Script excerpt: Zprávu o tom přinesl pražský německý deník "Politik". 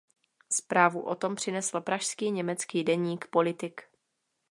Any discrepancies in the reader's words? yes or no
no